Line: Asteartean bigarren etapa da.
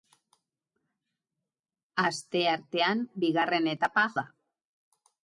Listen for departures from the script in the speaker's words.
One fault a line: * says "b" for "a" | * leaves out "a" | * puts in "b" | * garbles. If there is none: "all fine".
all fine